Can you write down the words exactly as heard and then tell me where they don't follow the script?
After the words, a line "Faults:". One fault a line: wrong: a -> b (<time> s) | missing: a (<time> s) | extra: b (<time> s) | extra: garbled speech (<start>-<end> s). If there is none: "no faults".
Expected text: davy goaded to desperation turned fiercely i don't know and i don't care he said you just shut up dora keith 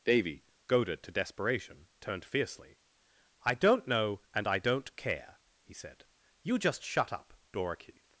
davy goaded to desperation turned fiercely i don't know and i don't care he said you just shut up dora keith
Faults:
no faults